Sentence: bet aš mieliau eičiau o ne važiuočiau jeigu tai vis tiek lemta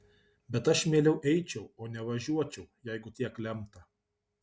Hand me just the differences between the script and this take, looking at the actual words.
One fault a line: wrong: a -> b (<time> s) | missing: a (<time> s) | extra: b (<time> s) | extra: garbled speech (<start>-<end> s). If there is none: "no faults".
missing: tai vis (3.1 s)